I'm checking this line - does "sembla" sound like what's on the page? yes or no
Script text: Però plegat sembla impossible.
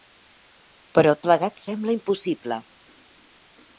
yes